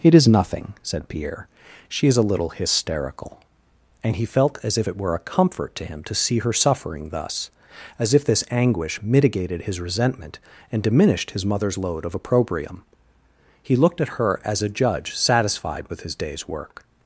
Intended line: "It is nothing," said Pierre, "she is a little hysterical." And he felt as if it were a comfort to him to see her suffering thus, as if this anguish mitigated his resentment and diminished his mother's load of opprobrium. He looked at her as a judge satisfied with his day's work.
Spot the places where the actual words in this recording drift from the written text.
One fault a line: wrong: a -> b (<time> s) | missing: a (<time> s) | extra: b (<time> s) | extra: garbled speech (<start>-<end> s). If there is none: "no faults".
no faults